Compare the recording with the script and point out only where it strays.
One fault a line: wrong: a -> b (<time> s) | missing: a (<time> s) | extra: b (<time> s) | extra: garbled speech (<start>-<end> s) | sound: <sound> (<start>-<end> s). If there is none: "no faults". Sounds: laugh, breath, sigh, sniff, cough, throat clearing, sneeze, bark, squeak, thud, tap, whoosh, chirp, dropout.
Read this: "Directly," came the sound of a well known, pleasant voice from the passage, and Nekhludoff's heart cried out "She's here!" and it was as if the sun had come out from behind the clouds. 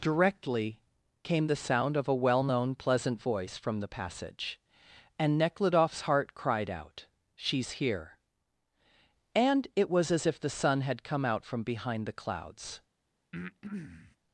sound: breath (13.3-14.2 s)